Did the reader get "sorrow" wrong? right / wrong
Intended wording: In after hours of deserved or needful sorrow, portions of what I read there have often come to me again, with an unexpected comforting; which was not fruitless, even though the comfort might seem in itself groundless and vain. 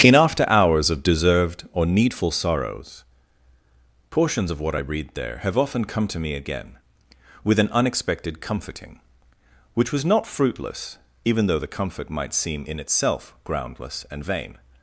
wrong